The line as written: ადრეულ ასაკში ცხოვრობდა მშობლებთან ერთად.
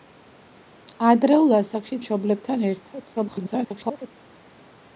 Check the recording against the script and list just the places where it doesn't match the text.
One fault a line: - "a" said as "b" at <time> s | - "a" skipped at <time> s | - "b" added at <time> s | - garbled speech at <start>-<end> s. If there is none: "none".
- "ცხოვრობდა" skipped at 2.0 s
- garbled speech at 3.1-4.1 s